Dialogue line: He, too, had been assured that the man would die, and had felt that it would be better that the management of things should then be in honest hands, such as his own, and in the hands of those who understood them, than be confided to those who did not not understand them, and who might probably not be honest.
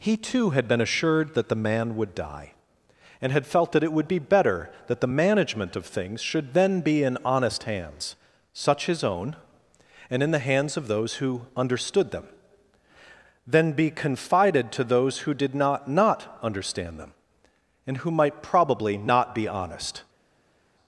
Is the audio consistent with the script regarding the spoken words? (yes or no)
no